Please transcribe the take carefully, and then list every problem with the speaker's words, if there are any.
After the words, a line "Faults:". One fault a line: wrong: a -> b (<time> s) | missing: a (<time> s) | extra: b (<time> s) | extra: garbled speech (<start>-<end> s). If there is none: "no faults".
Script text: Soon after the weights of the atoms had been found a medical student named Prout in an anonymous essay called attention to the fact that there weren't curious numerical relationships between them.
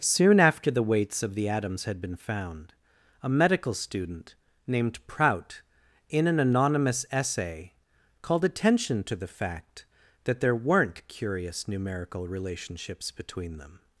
Soon after the weights of the atoms had been found a medical student named Prout in an anonymous essay called attention to the fact that there weren't curious numerical relationships between them.
Faults:
no faults